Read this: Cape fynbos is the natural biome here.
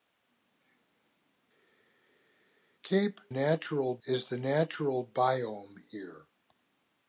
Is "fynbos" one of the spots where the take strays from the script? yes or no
yes